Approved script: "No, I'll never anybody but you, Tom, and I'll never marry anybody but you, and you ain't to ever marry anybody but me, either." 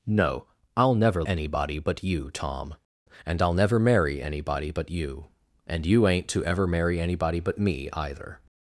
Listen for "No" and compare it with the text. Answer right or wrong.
right